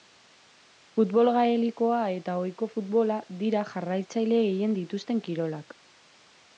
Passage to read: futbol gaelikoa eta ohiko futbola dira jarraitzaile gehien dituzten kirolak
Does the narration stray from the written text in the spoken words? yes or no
no